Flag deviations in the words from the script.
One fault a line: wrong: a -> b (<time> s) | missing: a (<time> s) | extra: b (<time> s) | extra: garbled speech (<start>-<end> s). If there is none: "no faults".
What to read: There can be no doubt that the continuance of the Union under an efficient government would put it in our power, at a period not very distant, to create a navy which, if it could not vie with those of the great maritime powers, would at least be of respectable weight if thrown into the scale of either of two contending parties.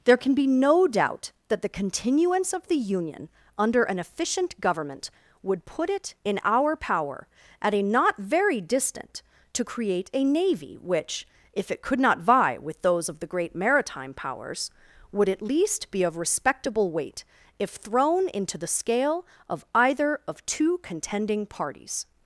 missing: period (7.8 s)